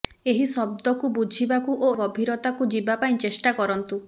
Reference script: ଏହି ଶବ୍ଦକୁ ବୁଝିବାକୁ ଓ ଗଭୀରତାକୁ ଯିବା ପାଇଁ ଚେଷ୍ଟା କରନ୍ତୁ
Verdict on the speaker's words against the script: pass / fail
pass